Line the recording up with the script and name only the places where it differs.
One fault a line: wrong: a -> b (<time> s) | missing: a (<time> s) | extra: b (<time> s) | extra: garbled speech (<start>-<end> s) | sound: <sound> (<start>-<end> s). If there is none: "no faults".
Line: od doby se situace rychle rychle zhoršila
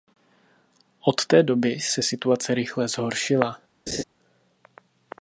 extra: té (1.2 s)
missing: rychle (2.9 s)
sound: laugh (3.9-4.0 s)